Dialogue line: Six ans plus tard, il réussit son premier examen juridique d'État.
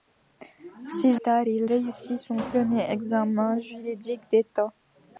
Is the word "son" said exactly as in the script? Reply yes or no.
yes